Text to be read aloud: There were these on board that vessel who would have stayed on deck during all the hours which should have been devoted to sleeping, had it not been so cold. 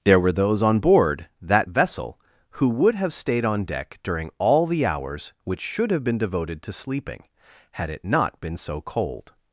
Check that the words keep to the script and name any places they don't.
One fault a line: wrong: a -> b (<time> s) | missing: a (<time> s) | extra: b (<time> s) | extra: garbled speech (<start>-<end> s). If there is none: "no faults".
wrong: these -> those (0.3 s)